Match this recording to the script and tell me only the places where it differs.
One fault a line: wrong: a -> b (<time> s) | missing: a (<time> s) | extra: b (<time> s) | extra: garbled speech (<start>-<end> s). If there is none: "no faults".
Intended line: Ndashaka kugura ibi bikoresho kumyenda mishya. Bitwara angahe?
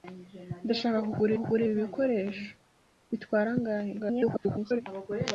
extra: kugura (1.4 s)
missing: kumyenda mishya (2.5 s)
extra: garbled speech (4.0-4.8 s)